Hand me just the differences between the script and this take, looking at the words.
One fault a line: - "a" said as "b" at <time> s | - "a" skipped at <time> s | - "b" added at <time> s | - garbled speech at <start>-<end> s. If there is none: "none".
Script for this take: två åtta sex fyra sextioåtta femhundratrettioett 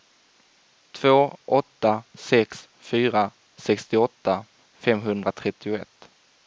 none